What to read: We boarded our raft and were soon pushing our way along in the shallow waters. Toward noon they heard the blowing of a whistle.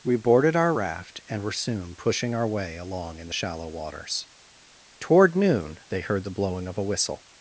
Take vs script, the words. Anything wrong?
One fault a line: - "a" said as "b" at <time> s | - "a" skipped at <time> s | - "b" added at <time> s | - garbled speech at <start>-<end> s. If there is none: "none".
none